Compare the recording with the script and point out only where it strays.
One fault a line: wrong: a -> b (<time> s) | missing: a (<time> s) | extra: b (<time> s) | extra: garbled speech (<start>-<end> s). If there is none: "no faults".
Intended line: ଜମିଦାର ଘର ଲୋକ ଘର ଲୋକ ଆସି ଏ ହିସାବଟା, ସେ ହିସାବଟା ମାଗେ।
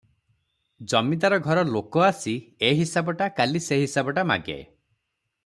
missing: ଘର ଲୋକ (2.0 s)
extra: କାଲି (3.4 s)